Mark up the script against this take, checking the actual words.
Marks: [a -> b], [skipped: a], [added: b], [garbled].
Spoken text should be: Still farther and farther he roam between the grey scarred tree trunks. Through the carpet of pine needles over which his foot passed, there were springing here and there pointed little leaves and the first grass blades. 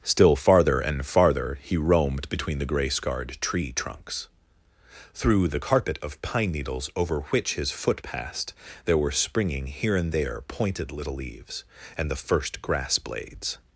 Still farther and farther he [roam -> roamed] between the grey scarred tree trunks. Through the carpet of pine needles over which his foot passed, there were springing here and there pointed little leaves and the first grass blades.